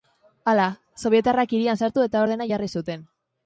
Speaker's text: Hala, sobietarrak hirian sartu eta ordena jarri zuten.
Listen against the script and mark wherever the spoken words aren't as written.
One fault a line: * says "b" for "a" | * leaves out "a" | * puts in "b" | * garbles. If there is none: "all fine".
all fine